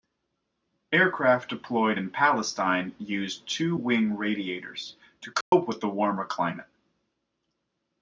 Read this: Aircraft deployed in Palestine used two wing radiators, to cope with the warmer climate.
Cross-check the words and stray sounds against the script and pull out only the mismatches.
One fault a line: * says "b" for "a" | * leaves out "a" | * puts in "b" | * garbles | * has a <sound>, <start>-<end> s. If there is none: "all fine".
* has a dropout, 5.4-5.5 s